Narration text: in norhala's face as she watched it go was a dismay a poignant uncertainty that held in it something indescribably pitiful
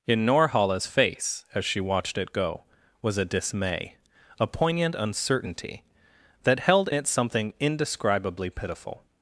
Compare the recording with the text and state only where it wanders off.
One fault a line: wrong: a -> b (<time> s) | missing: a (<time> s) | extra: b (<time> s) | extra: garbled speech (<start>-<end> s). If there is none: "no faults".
missing: in (6.9 s)